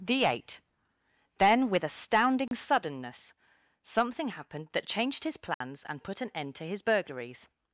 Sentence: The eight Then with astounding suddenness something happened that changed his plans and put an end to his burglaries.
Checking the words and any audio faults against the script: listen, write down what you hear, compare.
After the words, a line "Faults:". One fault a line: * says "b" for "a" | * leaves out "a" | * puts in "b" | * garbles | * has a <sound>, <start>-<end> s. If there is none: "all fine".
The eight Then with astounding suddenness something happened that changed his plans and put an end to his burglaries.
Faults:
* has a dropout, 2.5-2.5 s
* has a dropout, 5.5-5.6 s